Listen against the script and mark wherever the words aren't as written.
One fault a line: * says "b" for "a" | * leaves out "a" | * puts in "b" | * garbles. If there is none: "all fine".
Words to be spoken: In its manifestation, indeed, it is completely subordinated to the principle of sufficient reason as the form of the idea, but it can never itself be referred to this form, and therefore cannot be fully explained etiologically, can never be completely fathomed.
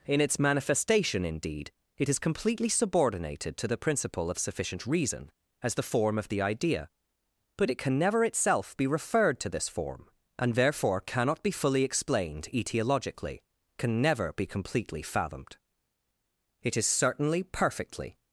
* puts in "It is certainly perfectly"